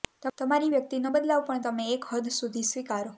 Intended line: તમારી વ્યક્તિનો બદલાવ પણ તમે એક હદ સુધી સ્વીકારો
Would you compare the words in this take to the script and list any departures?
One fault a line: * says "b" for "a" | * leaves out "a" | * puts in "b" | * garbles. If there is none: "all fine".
all fine